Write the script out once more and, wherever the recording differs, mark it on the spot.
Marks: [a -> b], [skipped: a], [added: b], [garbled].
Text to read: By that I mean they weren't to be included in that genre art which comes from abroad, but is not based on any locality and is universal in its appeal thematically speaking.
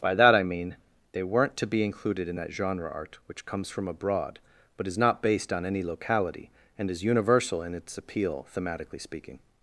By that I mean they weren't to be included in that genre art which comes from abroad, but is not based on any locality and is universal in its appeal thematically speaking.